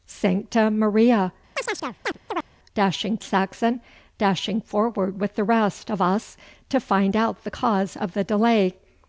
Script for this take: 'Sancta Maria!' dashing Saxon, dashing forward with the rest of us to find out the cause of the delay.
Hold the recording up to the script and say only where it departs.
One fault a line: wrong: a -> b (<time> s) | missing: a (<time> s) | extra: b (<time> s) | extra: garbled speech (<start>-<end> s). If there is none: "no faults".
no faults